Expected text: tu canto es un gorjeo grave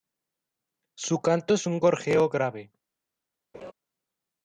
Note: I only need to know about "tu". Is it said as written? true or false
false